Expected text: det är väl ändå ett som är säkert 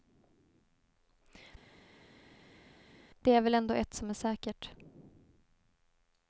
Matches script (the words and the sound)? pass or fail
pass